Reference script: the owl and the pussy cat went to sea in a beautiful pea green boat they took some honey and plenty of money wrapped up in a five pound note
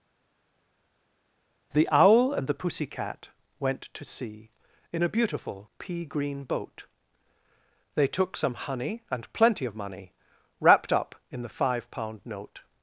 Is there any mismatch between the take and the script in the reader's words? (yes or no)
yes